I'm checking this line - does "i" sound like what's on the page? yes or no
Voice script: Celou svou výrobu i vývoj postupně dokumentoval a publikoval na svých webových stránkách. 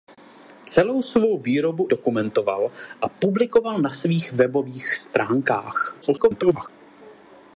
no